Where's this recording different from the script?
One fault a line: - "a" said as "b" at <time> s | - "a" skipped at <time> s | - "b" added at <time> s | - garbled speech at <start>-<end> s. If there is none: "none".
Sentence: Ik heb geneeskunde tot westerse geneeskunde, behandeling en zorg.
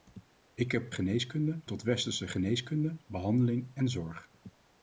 none